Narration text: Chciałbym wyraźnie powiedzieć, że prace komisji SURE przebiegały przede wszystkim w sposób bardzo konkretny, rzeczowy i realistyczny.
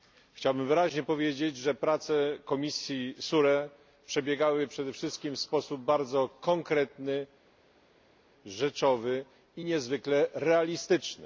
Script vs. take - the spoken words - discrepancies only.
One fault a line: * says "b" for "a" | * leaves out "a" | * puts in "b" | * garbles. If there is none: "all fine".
* puts in "niezwykle"